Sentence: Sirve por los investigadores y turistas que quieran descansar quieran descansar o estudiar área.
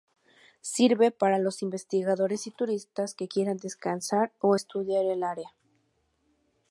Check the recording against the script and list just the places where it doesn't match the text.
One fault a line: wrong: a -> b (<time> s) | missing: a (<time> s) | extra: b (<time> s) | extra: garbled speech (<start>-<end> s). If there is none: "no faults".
wrong: por -> para (1.1 s)
missing: quieran descansar (4.3 s)
extra: el (5.1 s)